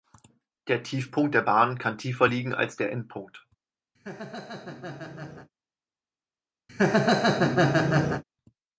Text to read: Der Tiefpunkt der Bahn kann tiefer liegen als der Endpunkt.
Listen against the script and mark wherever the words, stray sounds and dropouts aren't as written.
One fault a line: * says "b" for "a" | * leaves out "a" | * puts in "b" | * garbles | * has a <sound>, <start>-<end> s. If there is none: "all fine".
* has a laugh, 3.9-5.5 s
* has a laugh, 6.7-8.2 s